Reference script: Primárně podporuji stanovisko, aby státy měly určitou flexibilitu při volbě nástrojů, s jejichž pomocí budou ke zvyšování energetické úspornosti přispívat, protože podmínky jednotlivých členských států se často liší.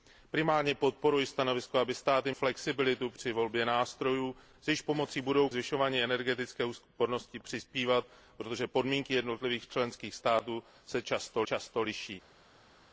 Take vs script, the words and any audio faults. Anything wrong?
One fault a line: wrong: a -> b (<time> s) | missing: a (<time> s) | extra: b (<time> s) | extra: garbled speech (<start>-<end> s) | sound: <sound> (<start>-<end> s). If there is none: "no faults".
missing: měly určitou (2.3 s)
missing: ke (5.5 s)
extra: často (11.4 s)